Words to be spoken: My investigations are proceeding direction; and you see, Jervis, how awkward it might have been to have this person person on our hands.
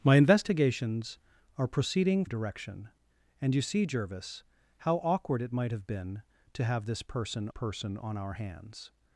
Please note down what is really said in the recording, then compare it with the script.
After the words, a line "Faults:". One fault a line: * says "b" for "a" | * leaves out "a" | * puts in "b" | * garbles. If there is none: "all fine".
My investigations are proceeding direction; and you see, Jervis, how awkward it might have been to have this person person on our hands.
Faults:
all fine